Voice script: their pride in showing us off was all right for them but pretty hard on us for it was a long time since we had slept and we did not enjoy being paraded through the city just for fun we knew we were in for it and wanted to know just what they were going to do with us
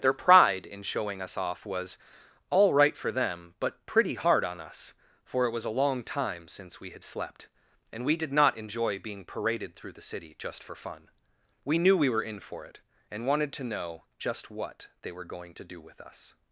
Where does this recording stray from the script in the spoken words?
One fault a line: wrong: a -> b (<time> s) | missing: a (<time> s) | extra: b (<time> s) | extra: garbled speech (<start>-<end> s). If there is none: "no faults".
no faults